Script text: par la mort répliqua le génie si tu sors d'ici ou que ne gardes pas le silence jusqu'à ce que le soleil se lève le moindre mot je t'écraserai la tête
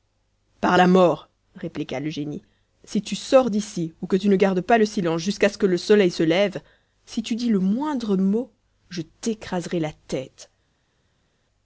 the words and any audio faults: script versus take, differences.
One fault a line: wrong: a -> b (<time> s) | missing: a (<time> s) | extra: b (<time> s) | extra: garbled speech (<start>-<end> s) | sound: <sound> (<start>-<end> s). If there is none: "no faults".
extra: tu (4.1 s)
extra: si tu dis (7.1 s)